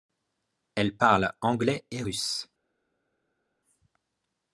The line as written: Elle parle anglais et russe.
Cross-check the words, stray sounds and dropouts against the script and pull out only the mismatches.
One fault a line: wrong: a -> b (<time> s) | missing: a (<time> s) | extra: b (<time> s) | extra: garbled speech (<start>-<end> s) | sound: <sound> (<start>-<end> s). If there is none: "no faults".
no faults